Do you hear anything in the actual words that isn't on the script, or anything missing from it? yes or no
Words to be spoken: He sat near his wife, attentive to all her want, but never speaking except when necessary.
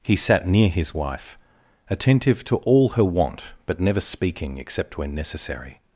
no